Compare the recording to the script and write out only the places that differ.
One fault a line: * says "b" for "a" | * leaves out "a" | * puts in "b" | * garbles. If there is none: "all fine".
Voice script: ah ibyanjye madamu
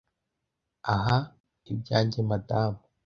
all fine